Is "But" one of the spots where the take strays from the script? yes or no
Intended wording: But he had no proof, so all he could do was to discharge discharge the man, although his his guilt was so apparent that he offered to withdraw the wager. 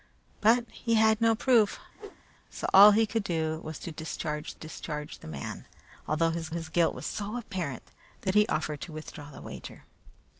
no